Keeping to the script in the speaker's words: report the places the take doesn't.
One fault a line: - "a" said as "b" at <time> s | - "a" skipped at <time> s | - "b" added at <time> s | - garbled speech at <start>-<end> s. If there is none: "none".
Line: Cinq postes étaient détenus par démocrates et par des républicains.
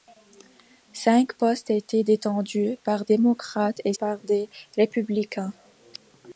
none